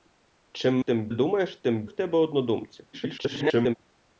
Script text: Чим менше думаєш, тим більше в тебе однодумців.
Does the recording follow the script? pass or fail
fail